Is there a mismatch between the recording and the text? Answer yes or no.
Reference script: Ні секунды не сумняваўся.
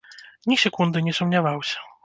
no